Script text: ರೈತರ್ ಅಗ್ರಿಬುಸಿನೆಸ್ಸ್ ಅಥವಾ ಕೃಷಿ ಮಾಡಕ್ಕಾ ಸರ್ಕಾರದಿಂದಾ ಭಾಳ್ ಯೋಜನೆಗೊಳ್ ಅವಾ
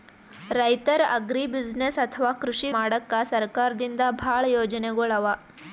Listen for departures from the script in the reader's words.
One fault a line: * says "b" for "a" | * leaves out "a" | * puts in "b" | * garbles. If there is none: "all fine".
all fine